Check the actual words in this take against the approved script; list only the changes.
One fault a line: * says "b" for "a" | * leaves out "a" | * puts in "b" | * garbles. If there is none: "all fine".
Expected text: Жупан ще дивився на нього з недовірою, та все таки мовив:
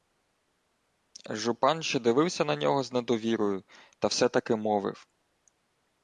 all fine